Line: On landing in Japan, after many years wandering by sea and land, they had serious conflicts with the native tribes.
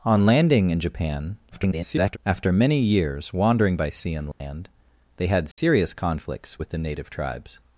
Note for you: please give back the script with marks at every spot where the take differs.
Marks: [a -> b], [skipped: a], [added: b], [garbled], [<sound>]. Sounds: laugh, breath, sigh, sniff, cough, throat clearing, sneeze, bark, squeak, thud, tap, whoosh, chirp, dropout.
On landing in Japan, [garbled] after many years wandering by sea and land, [dropout] they had serious [dropout] conflicts with the native tribes.